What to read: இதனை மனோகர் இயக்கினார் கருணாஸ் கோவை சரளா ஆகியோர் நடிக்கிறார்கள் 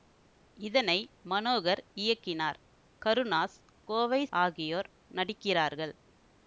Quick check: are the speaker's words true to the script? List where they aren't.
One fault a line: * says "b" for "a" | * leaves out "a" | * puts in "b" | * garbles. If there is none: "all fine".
* leaves out "சரளா"